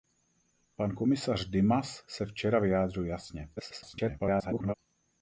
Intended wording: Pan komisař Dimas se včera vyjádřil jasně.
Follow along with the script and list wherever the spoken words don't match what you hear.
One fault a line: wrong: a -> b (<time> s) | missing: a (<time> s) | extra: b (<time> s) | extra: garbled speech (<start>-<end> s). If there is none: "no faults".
extra: garbled speech (3.6-4.7 s)